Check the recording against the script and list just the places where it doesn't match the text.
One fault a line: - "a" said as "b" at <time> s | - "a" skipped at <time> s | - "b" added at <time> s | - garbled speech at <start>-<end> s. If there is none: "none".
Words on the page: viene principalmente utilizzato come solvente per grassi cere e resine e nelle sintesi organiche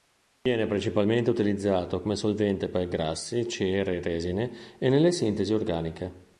none